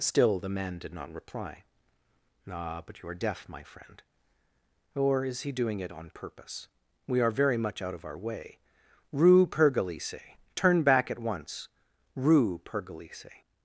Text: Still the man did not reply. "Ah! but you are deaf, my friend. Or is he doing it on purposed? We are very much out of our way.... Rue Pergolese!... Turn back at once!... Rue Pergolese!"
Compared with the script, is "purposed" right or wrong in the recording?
wrong